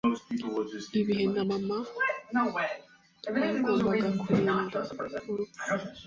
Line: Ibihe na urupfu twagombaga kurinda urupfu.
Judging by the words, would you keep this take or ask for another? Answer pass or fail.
fail